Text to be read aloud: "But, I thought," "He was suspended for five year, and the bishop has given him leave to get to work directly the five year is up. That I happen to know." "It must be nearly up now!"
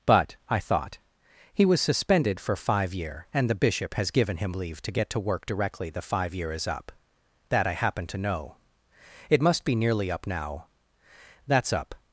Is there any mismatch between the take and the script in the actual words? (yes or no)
yes